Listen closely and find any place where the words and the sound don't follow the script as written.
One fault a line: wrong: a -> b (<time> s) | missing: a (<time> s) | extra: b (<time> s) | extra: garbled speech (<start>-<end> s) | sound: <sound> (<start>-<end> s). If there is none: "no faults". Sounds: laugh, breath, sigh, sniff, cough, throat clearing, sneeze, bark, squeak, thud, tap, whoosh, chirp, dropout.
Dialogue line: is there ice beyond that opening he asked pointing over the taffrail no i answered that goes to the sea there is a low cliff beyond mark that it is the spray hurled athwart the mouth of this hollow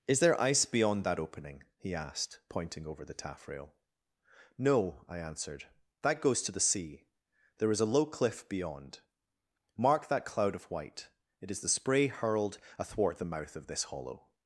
extra: cloud of white (10.2 s)